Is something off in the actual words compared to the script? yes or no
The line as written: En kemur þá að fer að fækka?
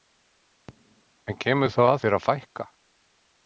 no